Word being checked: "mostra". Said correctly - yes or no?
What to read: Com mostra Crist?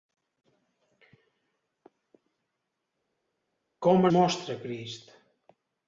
yes